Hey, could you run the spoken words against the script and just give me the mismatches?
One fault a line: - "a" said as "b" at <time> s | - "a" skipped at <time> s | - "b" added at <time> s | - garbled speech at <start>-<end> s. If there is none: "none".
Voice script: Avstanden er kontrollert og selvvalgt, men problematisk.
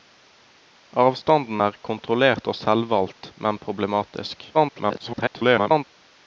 - garbled speech at 4.5-5.8 s